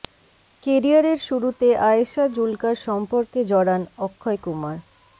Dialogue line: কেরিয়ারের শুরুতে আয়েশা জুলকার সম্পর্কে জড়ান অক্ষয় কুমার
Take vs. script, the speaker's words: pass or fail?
pass